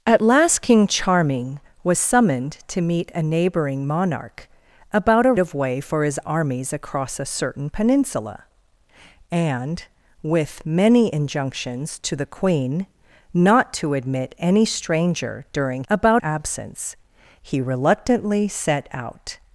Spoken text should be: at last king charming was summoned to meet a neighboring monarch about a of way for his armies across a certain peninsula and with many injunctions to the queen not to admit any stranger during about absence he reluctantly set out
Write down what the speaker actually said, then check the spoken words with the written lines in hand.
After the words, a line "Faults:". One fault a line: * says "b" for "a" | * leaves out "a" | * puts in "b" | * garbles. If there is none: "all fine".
at last king charming was summoned to meet a neighboring monarch about a of way for his armies across a certain peninsula and with many injunctions to the queen not to admit any stranger during about absence he reluctantly set out
Faults:
all fine